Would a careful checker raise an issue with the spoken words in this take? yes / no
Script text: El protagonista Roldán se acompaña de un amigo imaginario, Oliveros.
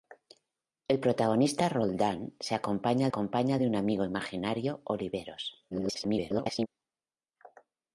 yes